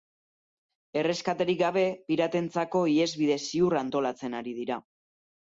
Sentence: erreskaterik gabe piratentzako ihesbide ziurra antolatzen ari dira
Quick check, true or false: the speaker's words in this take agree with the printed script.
true